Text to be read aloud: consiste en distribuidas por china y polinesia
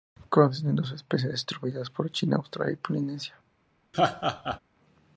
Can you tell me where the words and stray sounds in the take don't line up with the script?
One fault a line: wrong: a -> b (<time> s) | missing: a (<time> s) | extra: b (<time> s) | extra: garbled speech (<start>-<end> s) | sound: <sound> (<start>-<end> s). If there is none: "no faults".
extra: dos especies (0.8 s)
extra: australia (2.4 s)
sound: laugh (3.9-4.6 s)